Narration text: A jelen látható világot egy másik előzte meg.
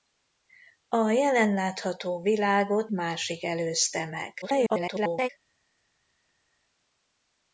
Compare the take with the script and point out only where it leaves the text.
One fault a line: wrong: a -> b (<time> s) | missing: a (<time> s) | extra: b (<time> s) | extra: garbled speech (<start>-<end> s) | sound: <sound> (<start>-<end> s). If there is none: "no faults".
missing: egy (2.9 s)
extra: garbled speech (4.4-5.3 s)